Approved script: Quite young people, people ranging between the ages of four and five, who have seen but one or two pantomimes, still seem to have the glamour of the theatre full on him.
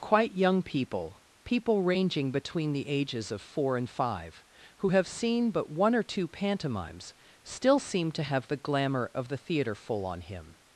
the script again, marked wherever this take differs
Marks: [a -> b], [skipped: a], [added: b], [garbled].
Quite young people, people ranging between the ages of four and five, who have seen but one or two pantomimes, still seem to have the glamour of the theatre full on him.